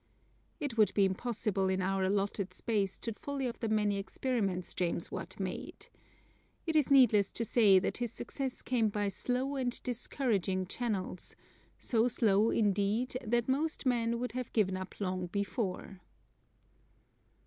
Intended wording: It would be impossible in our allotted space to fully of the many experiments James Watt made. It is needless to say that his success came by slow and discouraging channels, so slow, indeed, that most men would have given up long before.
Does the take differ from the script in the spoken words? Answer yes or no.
no